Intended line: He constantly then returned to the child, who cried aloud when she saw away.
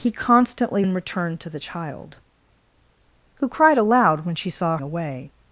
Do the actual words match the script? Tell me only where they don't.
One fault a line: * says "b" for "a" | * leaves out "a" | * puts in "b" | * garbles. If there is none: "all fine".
all fine